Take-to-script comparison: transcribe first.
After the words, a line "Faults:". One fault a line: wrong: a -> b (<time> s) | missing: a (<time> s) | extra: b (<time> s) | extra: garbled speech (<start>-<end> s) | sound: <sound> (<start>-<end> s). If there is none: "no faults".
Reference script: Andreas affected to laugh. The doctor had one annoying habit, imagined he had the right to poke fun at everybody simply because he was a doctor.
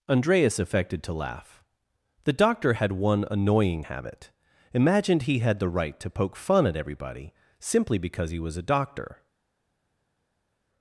Andreas affected to laugh. The doctor had one annoying habit, imagined he had the right to poke fun at everybody simply because he was a doctor.
Faults:
no faults